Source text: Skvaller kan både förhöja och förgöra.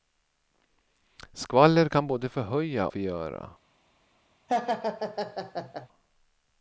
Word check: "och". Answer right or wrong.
wrong